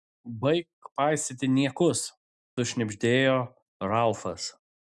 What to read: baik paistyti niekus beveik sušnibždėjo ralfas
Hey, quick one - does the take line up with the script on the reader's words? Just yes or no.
no